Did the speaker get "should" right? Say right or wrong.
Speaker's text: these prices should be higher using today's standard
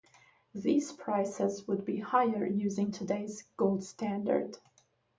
wrong